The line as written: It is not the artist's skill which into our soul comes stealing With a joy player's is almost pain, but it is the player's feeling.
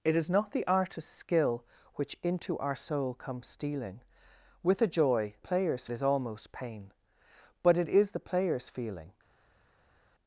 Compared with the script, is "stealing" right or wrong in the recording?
right